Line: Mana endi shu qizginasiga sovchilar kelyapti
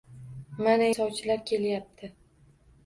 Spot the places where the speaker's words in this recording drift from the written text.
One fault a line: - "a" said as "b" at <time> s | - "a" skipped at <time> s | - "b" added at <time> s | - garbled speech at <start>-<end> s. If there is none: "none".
- "endi shu qizginasiga" skipped at 0.9 s